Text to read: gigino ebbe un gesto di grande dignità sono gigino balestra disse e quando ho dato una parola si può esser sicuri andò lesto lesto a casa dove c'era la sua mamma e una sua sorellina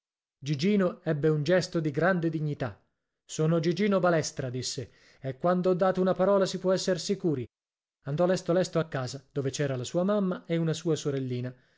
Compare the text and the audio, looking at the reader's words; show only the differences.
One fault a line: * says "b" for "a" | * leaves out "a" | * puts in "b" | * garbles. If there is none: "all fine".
all fine